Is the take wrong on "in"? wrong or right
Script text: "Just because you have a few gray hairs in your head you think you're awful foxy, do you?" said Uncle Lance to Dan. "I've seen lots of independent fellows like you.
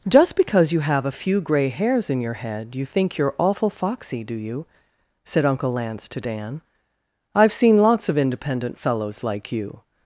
right